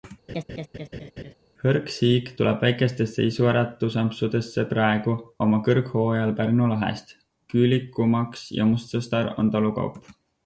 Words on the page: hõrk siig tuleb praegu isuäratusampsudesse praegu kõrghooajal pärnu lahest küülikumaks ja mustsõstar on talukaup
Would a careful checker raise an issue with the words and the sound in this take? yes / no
yes